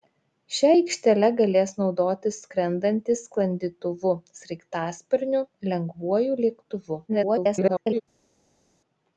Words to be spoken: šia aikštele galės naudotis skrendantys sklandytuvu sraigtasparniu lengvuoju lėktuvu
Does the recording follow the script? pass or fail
fail